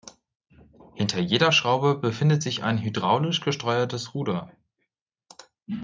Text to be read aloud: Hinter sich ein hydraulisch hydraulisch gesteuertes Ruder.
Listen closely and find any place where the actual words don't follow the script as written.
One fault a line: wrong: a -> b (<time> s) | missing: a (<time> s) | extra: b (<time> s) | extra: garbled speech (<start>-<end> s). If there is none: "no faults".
extra: jeder Schraube befindet (1.2 s)
missing: hydraulisch (3.4 s)